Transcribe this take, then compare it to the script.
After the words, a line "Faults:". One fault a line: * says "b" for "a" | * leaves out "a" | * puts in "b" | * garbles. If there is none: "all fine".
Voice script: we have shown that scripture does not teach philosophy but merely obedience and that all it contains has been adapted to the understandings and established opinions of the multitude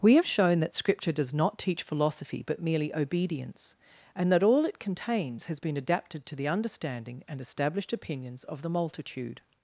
we have shown that scripture does not teach philosophy but merely obedience and that all it contains has been adapted to the understanding and established opinions of the multitude
Faults:
* says "understanding" for "understandings"